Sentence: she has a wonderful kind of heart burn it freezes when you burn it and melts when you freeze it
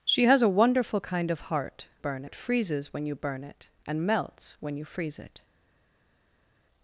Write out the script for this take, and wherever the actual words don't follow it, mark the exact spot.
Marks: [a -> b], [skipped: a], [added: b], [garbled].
she has a wonderful kind of heart burn it freezes when you burn it and melts when you freeze it